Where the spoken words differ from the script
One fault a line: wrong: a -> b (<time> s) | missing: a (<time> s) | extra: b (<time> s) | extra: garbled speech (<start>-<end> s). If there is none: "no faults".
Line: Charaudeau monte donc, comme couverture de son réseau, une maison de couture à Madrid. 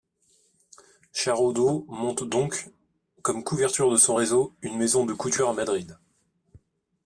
no faults